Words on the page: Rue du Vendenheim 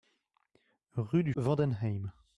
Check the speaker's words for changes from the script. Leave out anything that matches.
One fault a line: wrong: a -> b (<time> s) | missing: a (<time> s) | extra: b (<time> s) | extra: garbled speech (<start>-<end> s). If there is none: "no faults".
no faults